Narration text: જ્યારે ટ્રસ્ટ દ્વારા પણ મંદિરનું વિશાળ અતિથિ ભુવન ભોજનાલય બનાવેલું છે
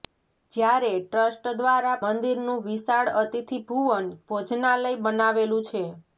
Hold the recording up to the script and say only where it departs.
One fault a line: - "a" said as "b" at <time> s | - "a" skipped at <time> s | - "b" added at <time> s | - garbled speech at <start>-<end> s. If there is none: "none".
- "પણ" skipped at 2.0 s